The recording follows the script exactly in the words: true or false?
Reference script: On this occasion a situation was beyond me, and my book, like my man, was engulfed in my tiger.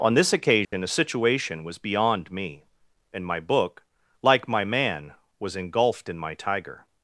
true